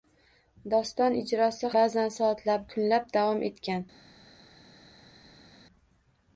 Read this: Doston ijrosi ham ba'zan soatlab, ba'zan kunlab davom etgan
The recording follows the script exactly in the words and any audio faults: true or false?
false